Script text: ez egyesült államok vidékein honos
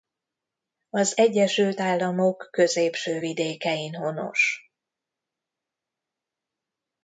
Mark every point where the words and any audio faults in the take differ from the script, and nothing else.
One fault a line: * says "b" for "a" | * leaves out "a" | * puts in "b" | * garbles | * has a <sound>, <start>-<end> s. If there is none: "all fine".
* says "az" for "ez"
* puts in "középső"